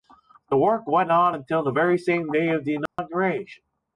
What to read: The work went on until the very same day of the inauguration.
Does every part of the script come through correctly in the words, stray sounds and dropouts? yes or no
no